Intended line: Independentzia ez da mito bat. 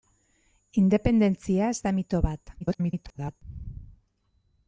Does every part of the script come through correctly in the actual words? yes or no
no